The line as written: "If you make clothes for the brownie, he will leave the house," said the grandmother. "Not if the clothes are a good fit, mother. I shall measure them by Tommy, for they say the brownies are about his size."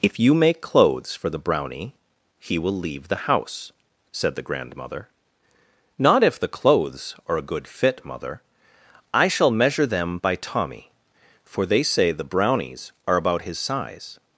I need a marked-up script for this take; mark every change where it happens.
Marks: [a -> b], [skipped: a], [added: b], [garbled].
"If you make clothes for the brownie, he will leave the house," said the grandmother. "Not if the clothes are a good fit, mother. I shall measure them by Tommy, for they say the brownies are about his size."